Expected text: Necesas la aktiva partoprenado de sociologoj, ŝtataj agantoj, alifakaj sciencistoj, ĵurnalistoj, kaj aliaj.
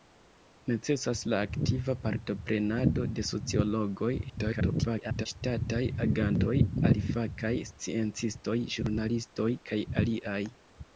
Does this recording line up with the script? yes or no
no